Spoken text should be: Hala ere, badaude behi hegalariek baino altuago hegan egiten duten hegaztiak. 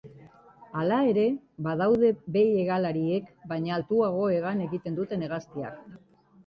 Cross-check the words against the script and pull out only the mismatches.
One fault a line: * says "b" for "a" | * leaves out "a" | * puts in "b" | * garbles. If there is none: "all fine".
all fine